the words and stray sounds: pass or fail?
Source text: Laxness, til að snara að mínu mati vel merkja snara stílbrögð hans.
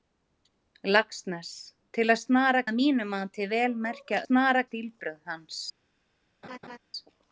fail